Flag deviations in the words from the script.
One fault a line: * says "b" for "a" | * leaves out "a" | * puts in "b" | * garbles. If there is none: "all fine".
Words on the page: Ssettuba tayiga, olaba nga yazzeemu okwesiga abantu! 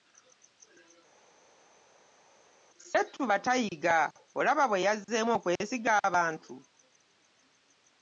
* says "bwe" for "nga"